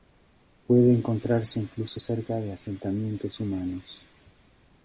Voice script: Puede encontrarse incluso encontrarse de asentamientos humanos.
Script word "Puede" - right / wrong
right